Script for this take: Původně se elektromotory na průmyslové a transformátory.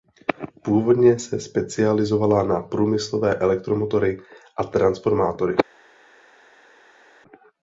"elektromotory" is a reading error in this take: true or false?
true